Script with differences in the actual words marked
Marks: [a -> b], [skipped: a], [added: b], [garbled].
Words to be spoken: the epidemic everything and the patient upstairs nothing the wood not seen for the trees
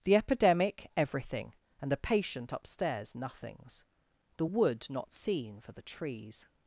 the epidemic everything and the patient upstairs [nothing -> nothings] the wood not seen for the trees